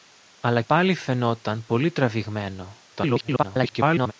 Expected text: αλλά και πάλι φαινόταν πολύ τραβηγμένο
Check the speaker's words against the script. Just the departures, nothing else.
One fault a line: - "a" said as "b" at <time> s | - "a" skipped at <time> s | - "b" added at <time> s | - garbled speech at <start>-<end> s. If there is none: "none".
- "και" skipped at 0.6 s
- garbled speech at 2.9-4.1 s